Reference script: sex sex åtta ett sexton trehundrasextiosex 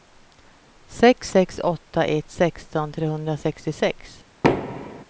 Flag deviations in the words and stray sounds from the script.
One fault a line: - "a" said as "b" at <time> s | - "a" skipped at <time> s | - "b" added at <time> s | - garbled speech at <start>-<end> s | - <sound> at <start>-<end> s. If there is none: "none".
- thud at 4.4-5.0 s